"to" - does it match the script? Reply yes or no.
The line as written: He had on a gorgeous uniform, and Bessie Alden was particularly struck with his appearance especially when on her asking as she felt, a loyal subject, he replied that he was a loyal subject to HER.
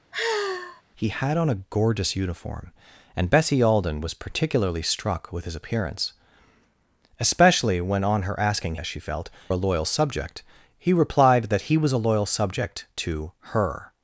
yes